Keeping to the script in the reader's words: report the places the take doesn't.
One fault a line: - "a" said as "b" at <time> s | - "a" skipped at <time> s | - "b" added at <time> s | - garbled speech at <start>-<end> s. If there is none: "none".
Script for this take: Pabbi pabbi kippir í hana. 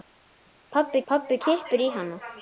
none